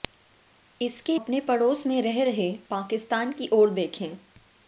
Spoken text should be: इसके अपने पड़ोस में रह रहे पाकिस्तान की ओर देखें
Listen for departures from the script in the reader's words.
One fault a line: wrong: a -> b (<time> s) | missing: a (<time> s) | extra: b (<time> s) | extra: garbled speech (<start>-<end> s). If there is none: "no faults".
no faults